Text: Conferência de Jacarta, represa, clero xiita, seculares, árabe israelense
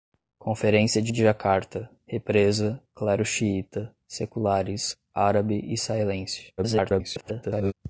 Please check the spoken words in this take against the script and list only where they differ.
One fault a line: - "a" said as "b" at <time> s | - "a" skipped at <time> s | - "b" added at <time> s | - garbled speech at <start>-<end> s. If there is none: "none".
- "de" added at 1.1 s
- garbled speech at 6.6-7.7 s